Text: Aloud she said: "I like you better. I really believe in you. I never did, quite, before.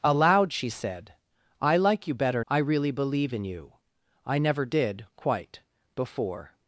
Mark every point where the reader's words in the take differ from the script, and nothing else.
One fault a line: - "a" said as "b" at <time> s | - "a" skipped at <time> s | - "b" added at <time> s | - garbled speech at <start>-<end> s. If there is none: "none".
none